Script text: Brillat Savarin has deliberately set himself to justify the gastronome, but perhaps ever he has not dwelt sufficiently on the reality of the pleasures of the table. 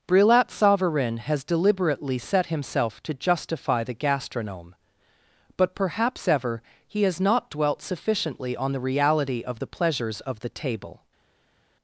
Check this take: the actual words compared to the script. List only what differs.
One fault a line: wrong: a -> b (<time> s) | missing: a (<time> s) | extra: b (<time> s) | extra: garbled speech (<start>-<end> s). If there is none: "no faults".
no faults